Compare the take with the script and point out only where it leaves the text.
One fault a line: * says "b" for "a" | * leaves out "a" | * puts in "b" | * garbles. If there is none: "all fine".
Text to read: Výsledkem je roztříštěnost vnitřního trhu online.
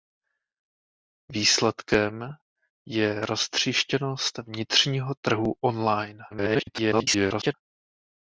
* garbles